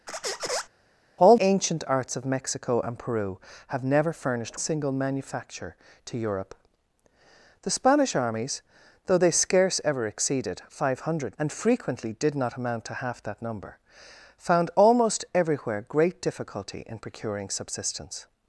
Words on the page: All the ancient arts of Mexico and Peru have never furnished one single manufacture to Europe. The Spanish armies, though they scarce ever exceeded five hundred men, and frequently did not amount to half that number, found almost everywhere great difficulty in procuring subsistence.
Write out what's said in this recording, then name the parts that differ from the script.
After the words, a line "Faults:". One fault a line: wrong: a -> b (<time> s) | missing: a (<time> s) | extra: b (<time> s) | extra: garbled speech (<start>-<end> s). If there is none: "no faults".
All ancient arts of Mexico and Peru have never furnished single manufacture to Europe. The Spanish armies, though they scarce ever exceeded five hundred and frequently did not amount to half that number, found almost everywhere great difficulty in procuring subsistence.
Faults:
missing: the (1.3 s)
missing: one (4.6 s)
missing: men (11.4 s)